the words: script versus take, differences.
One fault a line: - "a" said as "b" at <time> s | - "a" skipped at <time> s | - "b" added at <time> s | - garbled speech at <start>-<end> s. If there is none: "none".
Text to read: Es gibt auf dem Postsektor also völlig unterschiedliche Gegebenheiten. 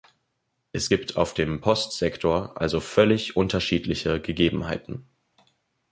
none